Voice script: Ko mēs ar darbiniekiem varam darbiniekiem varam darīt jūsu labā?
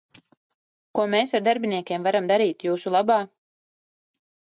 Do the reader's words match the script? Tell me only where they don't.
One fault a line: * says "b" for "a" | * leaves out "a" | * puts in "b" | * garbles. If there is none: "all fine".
* leaves out "darbiniekiem varam"